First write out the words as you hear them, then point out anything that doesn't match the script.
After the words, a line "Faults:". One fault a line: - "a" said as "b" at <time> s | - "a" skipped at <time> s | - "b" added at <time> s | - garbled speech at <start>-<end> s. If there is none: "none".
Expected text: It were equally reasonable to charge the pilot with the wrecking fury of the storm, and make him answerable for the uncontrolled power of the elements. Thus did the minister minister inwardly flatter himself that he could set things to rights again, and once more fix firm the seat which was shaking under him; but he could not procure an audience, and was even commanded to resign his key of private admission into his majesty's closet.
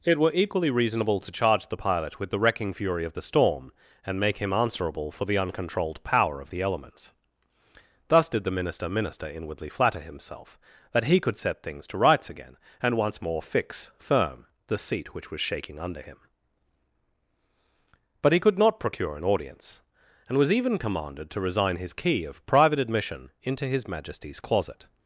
It were equally reasonable to charge the pilot with the wrecking fury of the storm, and make him answerable for the uncontrolled power of the elements. Thus did the minister minister inwardly flatter himself that he could set things to rights again, and once more fix firm the seat which was shaking under him; but he could not procure an audience, and was even commanded to resign his key of private admission into his majesty's closet.
Faults:
none